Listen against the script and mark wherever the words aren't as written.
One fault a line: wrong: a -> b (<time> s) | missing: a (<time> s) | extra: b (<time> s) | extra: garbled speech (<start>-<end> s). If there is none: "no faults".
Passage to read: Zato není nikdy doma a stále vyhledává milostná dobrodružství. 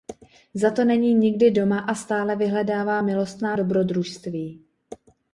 no faults